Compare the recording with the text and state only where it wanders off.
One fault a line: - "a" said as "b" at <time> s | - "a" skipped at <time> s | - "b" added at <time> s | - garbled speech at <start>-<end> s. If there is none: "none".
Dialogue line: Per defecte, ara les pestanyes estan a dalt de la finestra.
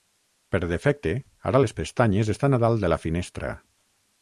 none